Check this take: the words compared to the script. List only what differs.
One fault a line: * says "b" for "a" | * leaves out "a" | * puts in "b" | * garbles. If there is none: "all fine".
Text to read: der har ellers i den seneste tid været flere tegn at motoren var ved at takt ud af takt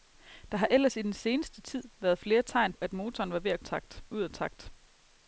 all fine